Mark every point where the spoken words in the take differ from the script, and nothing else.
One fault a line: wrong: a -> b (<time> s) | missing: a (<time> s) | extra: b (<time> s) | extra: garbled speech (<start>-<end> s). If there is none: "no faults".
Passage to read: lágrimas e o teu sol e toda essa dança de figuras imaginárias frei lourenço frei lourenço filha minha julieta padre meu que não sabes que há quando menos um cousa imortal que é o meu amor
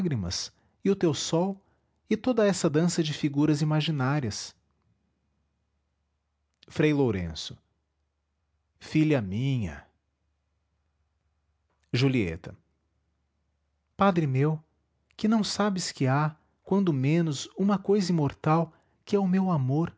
missing: frei lourenço (7.6 s)
wrong: um -> uma (17.6 s)